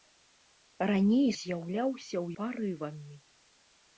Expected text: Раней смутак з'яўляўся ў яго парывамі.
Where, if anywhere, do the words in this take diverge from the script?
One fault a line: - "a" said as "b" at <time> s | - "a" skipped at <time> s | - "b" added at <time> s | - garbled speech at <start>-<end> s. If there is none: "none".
- "смутак" skipped at 1.3 s
- "яго" skipped at 2.3 s